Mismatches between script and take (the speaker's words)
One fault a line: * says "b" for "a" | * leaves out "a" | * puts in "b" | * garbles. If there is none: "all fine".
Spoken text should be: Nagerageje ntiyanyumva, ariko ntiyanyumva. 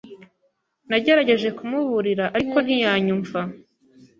* says "kumuburira" for "ntiyanyumva"